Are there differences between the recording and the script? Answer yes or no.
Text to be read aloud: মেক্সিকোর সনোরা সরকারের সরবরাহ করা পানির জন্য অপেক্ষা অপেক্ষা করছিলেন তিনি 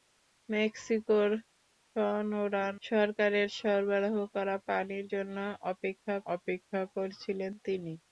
no